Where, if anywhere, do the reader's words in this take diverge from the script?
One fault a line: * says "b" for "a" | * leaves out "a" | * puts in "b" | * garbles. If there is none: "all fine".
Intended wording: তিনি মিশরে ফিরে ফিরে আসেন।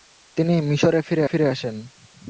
all fine